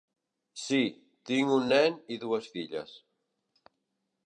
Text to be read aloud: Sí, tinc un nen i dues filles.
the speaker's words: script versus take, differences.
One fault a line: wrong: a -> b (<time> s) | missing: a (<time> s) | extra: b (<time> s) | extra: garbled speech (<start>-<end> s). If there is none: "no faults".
no faults